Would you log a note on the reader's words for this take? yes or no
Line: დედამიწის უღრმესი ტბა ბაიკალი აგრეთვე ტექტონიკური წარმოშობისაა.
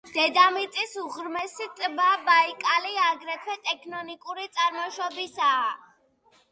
no